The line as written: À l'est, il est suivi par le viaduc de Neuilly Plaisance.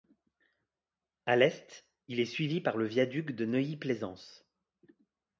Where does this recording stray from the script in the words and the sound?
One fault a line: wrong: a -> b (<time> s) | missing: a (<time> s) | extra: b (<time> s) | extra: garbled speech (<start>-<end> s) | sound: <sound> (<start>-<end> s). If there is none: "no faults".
no faults